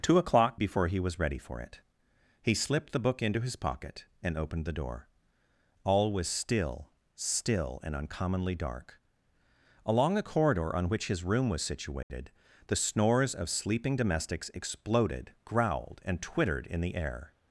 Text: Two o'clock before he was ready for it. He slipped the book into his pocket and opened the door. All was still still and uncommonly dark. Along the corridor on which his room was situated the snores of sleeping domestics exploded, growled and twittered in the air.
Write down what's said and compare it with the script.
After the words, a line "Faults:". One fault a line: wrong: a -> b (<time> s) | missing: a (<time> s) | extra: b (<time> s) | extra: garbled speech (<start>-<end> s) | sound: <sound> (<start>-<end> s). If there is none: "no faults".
Two o'clock before he was ready for it. He slipped the book into his pocket and opened the door. All was still still and uncommonly dark. Along the corridor on which his room was situated the snores of sleeping domestics exploded, growled and twittered in the air.
Faults:
sound: dropout (12.0-12.1 s)